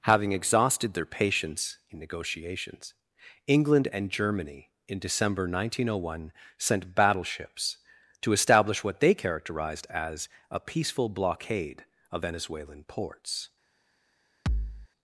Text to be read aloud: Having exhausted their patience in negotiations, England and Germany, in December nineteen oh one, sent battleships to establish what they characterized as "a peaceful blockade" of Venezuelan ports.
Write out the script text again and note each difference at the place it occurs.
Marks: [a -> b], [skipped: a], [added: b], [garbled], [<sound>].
Having exhausted their patience in negotiations, England and Germany, in December nineteen oh one, sent battleships to establish what they characterized as "a peaceful blockade" of Venezuelan ports. [thud]